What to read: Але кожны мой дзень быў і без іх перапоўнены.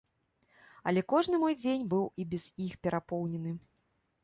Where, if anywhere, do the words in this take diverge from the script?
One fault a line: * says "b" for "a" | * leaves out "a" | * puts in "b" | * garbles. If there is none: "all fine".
all fine